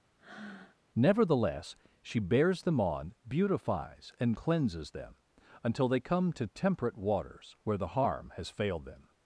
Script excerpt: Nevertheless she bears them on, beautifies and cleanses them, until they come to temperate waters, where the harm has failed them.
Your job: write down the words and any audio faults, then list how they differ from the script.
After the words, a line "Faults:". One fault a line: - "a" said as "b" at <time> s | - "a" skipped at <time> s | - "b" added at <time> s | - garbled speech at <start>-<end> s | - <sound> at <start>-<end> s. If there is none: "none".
Nevertheless she bears them on, beautifies and cleanses them, until they come to temperate waters, where the harm has failed them.
Faults:
- breath at 0.2-0.8 s